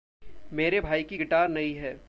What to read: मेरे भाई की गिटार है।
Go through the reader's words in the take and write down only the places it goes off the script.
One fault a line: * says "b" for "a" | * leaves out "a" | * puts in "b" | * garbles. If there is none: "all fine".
* puts in "नई"